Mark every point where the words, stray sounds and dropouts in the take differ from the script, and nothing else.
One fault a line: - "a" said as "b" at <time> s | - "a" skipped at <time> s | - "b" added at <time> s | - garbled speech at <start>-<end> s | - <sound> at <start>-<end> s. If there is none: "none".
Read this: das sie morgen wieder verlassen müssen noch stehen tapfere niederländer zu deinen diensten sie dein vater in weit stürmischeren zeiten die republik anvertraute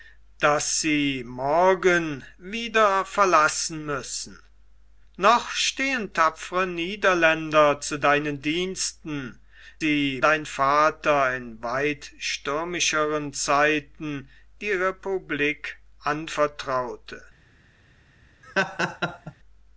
- laugh at 18.4-19.3 s